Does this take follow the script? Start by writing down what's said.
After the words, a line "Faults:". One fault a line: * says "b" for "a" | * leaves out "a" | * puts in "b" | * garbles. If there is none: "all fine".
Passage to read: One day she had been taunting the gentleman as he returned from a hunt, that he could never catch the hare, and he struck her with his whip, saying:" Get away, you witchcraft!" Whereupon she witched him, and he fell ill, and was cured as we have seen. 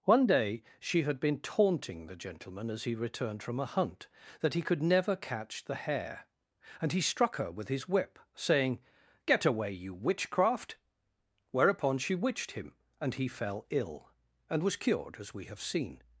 One day she had been taunting the gentleman as he returned from a hunt, that he could never catch the hare, and he struck her with his whip, saying:" Get away, you witchcraft!" Whereupon she witched him, and he fell ill, and was cured as we have seen.
Faults:
all fine